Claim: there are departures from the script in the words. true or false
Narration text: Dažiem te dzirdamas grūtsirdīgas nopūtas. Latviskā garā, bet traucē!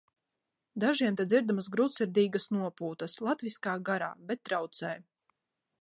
false